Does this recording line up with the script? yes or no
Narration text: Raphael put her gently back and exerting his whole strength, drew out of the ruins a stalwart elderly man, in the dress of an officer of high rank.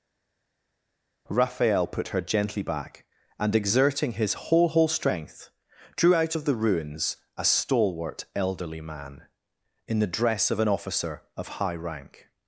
no